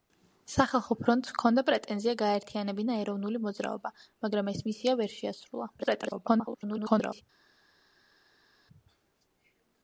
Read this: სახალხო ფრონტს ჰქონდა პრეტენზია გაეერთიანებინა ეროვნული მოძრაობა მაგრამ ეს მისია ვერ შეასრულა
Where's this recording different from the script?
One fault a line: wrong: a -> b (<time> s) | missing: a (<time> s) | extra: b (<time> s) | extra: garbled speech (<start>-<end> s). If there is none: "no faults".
extra: garbled speech (5.8-7.2 s)